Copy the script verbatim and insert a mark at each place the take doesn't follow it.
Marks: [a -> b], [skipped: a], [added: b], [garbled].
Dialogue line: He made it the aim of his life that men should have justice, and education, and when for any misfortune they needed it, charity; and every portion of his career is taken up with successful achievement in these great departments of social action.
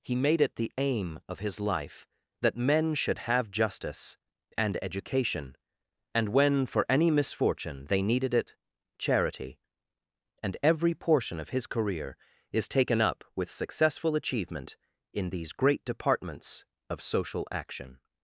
He made it the aim of his life that men should have justice, and education, and when for any misfortune they needed it, charity; and every portion of his career is taken up with successful achievement in these great departments of social action.